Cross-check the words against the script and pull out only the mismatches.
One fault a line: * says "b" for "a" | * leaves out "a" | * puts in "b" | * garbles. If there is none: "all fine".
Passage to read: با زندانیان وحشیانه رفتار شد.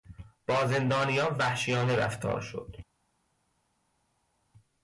all fine